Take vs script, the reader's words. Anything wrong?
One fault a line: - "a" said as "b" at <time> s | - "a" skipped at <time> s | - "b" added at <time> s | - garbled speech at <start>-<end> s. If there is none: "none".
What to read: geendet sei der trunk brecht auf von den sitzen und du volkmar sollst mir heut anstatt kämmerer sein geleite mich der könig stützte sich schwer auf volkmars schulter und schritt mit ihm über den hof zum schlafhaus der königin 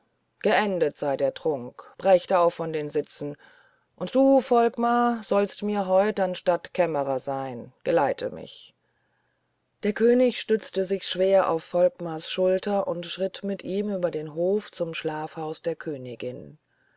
none